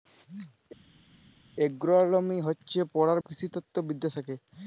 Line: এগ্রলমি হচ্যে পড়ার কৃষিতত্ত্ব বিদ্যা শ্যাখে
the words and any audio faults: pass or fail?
pass